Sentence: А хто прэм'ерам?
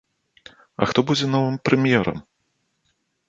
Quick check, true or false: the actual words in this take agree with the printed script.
false